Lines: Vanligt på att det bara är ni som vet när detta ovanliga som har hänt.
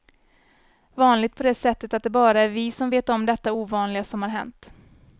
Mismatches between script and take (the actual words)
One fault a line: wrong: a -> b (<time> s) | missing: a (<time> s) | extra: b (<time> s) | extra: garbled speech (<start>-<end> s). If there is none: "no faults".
extra: det sättet (1.4 s)
wrong: ni -> vi (2.5 s)
wrong: när -> om (3.1 s)